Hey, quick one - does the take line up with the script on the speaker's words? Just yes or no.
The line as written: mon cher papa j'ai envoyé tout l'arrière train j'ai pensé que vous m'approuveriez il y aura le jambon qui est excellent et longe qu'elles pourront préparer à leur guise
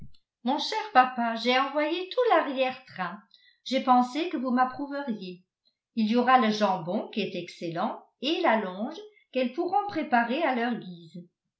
no